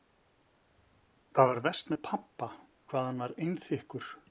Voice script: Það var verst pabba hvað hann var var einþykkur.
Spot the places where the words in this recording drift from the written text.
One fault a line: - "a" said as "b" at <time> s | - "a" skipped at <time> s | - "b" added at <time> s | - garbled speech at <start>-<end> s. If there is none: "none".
- "með" added at 1.9 s
- "var" skipped at 3.4 s